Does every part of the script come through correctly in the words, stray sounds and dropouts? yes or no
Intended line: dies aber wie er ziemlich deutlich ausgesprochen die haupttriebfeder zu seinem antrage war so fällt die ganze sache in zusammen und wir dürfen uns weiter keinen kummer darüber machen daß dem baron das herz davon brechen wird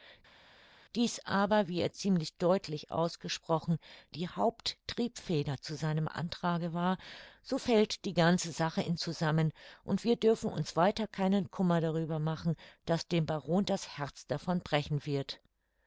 yes